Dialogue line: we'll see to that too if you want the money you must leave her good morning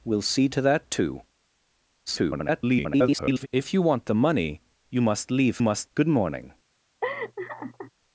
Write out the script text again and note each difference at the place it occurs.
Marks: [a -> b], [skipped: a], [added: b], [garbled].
we'll see to that too [garbled] if you want the money you must leave [her -> must] good morning